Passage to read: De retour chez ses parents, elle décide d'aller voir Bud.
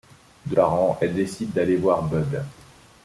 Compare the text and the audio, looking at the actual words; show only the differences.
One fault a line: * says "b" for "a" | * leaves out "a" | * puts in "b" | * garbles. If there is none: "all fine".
* leaves out "retour chez ses"